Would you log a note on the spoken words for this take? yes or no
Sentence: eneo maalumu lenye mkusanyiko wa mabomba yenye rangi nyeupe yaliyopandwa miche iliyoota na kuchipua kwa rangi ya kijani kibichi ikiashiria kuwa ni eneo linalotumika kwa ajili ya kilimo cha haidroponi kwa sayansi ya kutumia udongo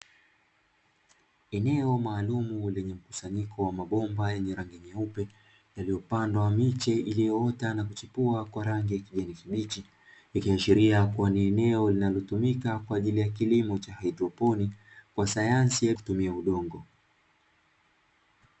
no